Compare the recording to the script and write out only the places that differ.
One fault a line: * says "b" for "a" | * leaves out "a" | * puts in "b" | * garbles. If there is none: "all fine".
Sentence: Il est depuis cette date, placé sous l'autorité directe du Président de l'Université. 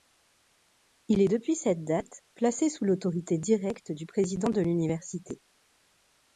all fine